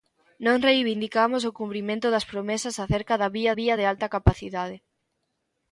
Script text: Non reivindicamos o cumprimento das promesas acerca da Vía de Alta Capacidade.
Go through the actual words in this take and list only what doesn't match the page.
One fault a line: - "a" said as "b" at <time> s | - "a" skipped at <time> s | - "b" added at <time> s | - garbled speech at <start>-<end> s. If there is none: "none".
- "Vía" added at 3.6 s